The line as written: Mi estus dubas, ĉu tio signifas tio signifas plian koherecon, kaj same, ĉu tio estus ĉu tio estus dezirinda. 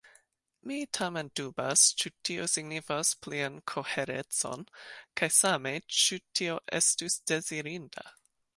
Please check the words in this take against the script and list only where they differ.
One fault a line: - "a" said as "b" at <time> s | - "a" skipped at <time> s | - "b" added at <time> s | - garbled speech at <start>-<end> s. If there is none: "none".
- "estus" said as "tamen" at 1.0 s
- "tio signifas" skipped at 3.1 s
- "ĉu tio estus" skipped at 7.2 s